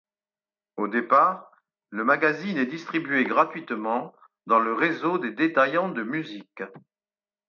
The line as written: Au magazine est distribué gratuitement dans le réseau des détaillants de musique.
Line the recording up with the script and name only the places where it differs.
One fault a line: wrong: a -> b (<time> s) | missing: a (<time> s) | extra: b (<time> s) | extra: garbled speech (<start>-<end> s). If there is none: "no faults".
extra: départ le (0.9 s)